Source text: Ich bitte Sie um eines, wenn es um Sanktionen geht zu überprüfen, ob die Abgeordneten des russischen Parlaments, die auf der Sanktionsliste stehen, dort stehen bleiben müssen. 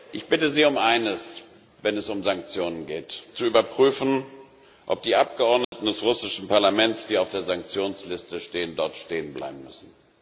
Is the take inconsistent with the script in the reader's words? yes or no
no